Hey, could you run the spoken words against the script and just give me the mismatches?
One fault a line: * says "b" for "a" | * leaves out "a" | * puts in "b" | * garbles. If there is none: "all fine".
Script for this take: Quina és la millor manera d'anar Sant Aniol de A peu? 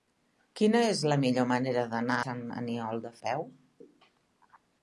all fine